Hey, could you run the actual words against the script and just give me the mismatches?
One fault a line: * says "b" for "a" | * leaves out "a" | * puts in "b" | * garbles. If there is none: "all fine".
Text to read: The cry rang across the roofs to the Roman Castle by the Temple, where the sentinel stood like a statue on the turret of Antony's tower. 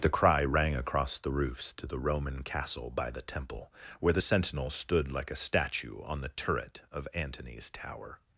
all fine